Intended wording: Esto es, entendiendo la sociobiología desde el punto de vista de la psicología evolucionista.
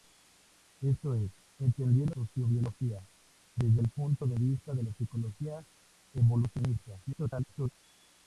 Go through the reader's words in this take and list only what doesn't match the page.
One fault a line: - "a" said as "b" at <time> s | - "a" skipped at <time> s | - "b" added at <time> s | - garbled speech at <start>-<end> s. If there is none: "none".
- "la" skipped at 2.1 s
- garbled speech at 7.0-7.8 s